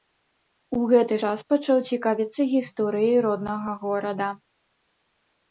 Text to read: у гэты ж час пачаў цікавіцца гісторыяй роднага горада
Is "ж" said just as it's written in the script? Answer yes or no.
no